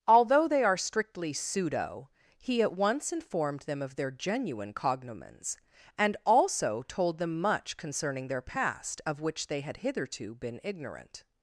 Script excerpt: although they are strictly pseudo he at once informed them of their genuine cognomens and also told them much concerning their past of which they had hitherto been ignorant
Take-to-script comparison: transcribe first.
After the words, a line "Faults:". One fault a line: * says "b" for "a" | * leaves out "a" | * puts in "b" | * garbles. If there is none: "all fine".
although they are strictly pseudo he at once informed them of their genuine cognomens and also told them much concerning their past of which they had hitherto been ignorant
Faults:
all fine